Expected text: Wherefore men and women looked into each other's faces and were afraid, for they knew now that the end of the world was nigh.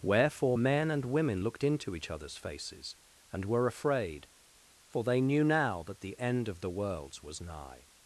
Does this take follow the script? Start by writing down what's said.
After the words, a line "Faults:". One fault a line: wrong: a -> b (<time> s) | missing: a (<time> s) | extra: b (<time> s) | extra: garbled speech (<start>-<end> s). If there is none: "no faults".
Wherefore men and women looked into each other's faces and were afraid, for they knew now that the end of the worlds was nigh.
Faults:
wrong: world -> worlds (6.7 s)